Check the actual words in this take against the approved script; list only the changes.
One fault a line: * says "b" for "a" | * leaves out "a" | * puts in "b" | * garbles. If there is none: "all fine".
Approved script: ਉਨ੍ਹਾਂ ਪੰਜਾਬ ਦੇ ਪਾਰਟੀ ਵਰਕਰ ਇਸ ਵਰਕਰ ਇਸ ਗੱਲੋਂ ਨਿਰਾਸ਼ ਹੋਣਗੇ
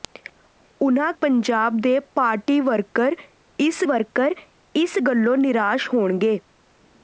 all fine